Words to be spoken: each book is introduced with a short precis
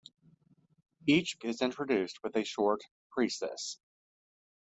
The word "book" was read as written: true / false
false